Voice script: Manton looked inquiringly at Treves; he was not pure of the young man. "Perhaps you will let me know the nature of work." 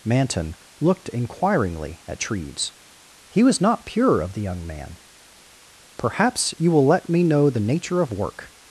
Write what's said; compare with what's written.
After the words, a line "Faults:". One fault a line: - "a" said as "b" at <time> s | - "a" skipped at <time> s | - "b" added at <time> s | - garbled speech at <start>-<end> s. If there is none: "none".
Manton looked inquiringly at Treves; he was not pure of the young man. "Perhaps you will let me know the nature of work."
Faults:
none